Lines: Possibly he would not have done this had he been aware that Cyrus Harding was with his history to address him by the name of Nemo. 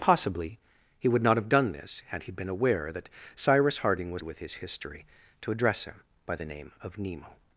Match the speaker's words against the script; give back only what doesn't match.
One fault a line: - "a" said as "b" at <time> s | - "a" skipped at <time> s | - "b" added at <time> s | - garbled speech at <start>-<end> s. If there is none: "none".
none